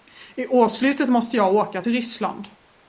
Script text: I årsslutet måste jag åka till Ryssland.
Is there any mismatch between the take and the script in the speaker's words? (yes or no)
no